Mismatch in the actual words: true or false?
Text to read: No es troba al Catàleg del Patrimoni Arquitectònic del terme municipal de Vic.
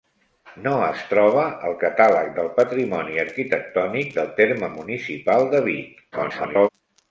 true